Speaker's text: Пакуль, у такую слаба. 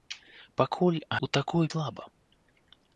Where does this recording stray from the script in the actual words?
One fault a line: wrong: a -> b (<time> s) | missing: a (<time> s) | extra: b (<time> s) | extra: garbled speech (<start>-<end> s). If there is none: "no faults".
no faults